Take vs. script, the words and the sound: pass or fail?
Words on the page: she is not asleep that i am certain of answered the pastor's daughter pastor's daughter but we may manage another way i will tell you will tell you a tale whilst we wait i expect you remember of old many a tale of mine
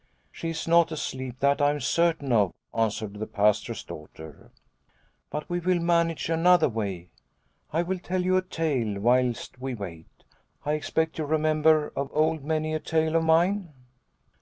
fail